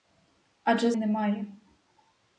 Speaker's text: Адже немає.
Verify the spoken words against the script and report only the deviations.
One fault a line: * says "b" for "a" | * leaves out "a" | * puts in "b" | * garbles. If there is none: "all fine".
all fine